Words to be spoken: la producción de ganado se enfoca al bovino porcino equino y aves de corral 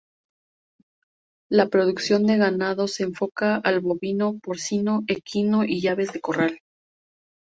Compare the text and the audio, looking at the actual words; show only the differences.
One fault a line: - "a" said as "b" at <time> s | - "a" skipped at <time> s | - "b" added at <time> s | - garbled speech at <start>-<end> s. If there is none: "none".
none